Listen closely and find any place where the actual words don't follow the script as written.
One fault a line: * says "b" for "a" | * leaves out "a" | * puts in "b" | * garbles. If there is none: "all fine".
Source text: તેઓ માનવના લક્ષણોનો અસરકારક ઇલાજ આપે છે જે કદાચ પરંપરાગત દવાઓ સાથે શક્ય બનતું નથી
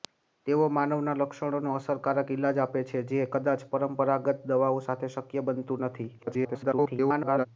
* garbles